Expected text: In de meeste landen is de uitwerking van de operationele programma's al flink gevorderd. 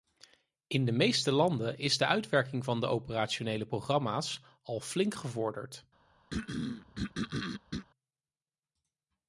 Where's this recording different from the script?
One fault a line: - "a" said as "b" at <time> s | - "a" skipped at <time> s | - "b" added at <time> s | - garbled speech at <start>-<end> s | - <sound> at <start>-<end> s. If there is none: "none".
- throat clearing at 6.3-7.9 s